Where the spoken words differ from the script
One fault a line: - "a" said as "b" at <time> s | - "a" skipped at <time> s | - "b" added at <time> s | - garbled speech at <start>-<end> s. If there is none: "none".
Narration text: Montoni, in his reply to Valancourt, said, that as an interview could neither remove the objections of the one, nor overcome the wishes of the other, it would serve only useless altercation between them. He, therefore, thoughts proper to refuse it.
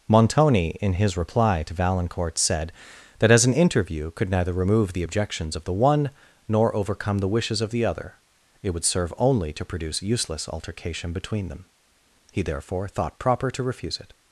- "to produce" added at 9.5 s
- "thoughts" said as "thought" at 12.9 s